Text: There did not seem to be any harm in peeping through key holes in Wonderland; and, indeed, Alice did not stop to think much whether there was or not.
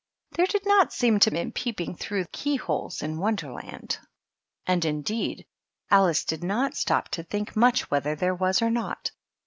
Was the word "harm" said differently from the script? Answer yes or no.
yes